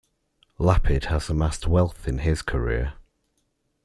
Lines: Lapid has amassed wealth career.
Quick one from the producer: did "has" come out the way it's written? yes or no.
yes